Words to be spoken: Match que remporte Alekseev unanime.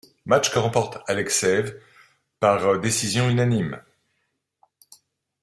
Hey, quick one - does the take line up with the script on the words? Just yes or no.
no